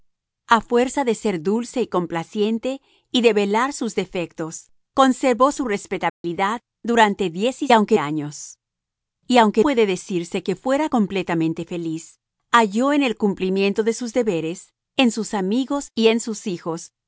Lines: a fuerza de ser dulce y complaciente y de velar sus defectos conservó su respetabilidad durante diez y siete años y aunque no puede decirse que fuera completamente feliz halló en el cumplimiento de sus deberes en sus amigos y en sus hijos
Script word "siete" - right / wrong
wrong